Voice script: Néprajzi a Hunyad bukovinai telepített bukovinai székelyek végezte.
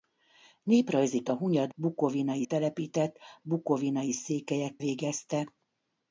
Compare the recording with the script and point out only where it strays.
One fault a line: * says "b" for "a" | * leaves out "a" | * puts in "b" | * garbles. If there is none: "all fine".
all fine